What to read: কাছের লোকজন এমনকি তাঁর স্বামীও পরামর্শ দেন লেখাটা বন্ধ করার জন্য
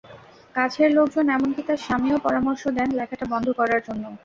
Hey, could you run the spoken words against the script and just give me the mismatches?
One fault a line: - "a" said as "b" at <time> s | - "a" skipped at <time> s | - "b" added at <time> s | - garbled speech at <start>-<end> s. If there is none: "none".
none